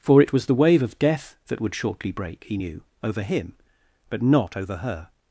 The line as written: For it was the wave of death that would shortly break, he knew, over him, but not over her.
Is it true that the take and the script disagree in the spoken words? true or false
false